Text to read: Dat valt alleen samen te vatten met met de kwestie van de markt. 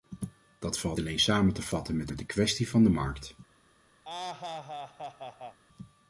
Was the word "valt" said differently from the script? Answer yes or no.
no